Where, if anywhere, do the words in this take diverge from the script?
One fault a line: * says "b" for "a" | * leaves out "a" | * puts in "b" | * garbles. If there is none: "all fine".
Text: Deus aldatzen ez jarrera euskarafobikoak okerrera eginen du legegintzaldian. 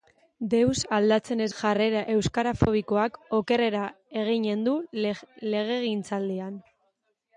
all fine